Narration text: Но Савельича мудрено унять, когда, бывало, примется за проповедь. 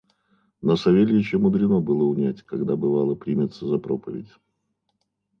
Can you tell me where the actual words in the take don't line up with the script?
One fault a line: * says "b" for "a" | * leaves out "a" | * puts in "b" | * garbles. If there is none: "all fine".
* puts in "было"